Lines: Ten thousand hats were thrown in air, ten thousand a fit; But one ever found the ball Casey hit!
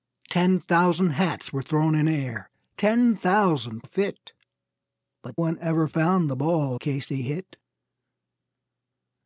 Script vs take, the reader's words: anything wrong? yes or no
no